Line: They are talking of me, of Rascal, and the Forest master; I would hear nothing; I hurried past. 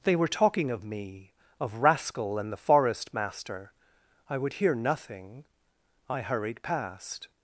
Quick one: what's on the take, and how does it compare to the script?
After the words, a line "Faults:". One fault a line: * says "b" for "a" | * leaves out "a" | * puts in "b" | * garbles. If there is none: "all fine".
They were talking of me, of Rascal, and the Forest master; I would hear nothing; I hurried past.
Faults:
* says "were" for "are"